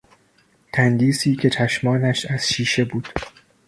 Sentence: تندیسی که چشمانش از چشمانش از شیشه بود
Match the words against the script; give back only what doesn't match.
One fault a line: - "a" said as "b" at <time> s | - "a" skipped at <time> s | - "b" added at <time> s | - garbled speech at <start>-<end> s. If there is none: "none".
- "چشمانش از" skipped at 2.5 s